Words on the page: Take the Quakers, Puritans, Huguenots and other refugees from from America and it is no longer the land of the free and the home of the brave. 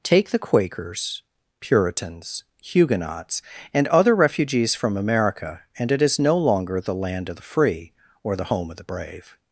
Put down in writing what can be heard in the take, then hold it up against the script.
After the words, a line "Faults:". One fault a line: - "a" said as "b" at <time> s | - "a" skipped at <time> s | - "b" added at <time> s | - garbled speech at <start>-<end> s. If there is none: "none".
Take the Quakers, Puritans, Huguenots and other refugees from America and it is no longer the land of the free or the home of the brave.
Faults:
- "from" skipped at 5.0 s
- "and" said as "or" at 8.2 s